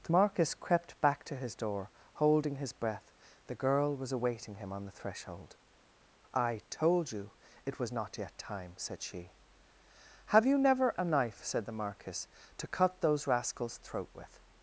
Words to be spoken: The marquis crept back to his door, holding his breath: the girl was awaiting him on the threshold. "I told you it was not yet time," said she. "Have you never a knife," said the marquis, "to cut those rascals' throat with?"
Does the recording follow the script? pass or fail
pass